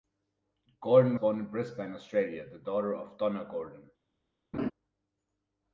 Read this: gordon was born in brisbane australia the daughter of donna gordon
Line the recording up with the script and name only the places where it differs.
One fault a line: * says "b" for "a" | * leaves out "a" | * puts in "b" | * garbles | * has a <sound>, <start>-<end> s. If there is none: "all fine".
* leaves out "was"
* has a laugh, 4.5-4.7 s